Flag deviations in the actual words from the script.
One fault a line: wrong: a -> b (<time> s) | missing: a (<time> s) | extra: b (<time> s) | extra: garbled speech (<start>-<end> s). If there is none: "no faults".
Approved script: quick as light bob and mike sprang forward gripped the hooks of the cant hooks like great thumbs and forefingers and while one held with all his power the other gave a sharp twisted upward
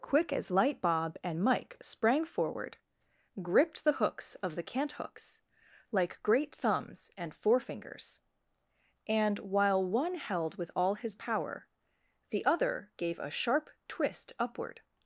wrong: twisted -> twist (13.9 s)